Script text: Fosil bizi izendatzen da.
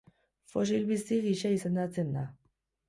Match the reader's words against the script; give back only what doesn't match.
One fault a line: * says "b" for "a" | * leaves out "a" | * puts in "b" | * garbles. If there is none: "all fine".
* puts in "gisa"